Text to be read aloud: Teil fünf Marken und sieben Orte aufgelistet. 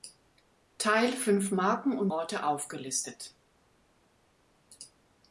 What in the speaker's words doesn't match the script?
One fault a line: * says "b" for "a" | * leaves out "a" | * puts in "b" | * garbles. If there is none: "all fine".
* leaves out "sieben"